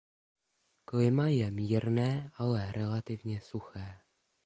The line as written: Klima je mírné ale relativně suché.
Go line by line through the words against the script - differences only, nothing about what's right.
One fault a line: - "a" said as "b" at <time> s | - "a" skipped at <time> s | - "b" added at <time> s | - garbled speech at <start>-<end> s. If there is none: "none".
none